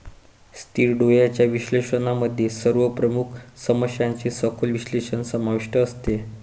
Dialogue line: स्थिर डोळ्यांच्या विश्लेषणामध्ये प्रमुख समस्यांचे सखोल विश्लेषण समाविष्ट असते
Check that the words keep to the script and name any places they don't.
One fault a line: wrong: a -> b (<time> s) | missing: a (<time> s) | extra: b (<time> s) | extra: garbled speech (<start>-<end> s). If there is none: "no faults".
extra: सर्व (2.5 s)